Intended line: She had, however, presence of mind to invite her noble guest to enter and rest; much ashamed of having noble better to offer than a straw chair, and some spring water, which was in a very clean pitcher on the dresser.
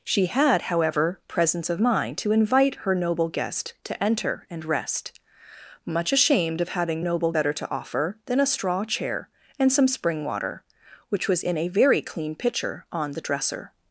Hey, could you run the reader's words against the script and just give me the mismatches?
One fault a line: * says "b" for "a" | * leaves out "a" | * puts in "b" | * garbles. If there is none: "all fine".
all fine